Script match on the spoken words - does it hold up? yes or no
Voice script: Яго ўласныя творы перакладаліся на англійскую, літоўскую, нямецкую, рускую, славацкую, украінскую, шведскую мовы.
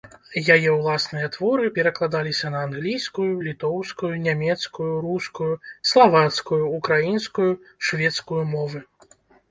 no